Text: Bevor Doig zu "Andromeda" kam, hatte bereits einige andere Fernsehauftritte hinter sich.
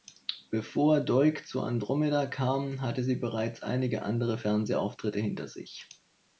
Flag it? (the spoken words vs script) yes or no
yes